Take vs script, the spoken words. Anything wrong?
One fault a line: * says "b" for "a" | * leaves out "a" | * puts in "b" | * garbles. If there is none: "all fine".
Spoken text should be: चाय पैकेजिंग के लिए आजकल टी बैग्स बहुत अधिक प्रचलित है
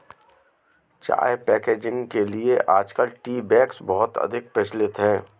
all fine